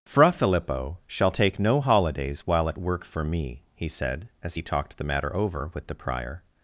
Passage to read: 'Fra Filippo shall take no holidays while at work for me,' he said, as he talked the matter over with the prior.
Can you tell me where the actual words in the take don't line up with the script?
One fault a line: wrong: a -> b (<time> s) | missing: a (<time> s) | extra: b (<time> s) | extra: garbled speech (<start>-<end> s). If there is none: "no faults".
no faults